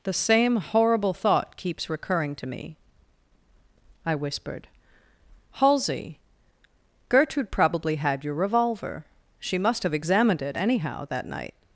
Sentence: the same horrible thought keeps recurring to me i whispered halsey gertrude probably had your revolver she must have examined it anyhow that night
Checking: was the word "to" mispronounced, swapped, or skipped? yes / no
no